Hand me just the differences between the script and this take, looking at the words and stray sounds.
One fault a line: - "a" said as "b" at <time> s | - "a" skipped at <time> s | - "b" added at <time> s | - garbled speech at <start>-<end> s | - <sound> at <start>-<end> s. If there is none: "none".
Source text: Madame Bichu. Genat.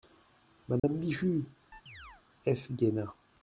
- dropout at 0.8-0.8 s
- chirp at 1.7-2.2 s
- "F" added at 2.4 s